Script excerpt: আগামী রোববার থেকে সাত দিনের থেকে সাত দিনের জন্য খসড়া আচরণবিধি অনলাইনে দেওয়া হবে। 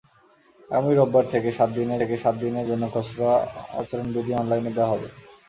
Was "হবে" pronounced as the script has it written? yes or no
yes